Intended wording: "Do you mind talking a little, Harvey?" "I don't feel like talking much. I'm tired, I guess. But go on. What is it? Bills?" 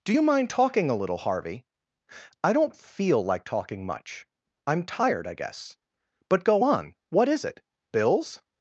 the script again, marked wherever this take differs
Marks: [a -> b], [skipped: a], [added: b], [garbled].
"Do you mind talking a little, Harvey?" "I don't feel like talking much. I'm tired, I guess. But go on. What is it? Bills?"